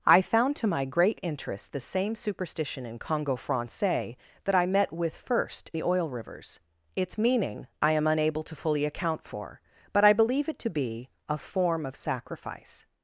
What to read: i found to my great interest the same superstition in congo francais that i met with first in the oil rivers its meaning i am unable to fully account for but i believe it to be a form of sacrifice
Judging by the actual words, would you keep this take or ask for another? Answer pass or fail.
fail